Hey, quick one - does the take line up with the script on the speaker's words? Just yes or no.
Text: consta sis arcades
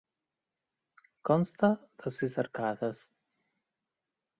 no